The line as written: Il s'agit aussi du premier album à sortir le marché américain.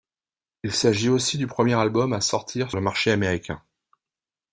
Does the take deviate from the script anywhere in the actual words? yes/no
no